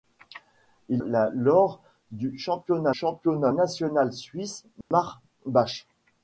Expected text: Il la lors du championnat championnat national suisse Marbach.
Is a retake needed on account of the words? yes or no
no